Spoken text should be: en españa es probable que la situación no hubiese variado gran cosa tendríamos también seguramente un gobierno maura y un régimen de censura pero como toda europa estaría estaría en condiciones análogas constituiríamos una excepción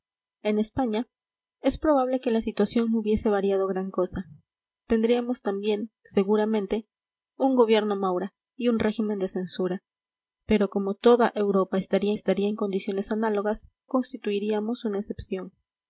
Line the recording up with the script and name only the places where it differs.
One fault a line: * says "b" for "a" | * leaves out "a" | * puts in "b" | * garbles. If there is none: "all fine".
all fine